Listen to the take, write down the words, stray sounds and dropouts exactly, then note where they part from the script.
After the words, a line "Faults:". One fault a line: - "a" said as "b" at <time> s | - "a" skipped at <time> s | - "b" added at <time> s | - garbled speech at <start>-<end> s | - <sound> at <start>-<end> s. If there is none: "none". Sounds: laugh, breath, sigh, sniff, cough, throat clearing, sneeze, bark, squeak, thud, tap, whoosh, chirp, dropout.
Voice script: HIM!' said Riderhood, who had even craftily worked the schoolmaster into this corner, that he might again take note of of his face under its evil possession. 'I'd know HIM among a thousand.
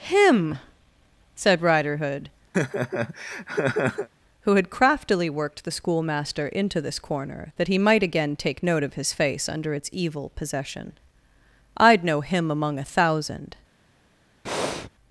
HIM!' said Riderhood, who had craftily worked the schoolmaster into this corner, that he might again take note of his face under its evil possession. 'I'd know HIM among a thousand.
Faults:
- laugh at 2.5-4.1 s
- "even" skipped at 4.7 s
- "of" skipped at 8.9 s
- breath at 14.5-14.9 s